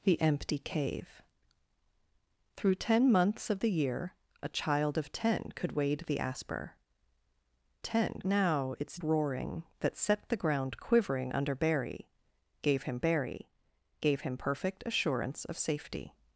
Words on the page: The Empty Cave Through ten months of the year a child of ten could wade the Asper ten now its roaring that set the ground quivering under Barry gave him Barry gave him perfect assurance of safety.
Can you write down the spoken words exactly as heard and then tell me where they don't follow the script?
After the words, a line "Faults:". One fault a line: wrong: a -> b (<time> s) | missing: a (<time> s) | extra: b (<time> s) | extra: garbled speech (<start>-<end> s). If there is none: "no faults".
The Empty Cave Through ten months of the year a child of ten could wade the Asper ten now its roaring that set the ground quivering under Barry gave him Barry gave him perfect assurance of safety.
Faults:
no faults